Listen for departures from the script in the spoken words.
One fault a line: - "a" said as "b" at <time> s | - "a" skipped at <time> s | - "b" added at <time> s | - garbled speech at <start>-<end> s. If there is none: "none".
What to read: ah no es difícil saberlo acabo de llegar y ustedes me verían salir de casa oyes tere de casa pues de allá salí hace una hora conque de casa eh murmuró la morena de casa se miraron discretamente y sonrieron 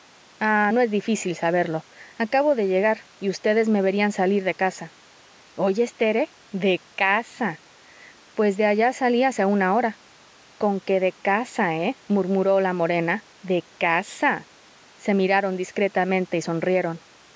none